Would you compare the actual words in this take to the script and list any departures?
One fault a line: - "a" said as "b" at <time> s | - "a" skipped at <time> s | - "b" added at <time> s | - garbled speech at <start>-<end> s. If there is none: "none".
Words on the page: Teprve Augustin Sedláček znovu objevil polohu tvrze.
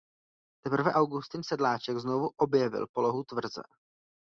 none